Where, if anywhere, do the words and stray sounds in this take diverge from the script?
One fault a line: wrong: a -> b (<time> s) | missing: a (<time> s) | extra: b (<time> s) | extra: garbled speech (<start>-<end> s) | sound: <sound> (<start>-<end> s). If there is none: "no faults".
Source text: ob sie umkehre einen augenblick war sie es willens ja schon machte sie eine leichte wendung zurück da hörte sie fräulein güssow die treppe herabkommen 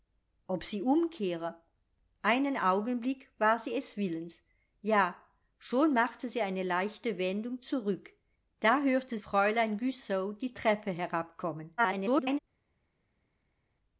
missing: sie (9.2 s)
extra: garbled speech (11.8-12.4 s)